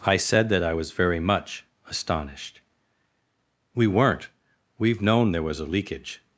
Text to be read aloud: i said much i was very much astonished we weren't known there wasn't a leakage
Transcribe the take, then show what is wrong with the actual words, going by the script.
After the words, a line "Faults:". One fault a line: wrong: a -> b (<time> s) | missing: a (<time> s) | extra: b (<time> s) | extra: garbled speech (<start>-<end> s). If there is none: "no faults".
i said that i was very much astonished we weren't we've known there was a leakage
Faults:
wrong: much -> that (0.5 s)
extra: we've (4.8 s)
wrong: wasn't -> was (5.4 s)